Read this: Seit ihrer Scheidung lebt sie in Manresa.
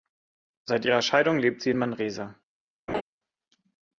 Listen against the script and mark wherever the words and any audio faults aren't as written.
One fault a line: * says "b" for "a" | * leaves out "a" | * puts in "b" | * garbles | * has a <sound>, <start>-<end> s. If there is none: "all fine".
* has a laugh, 2.9-3.0 s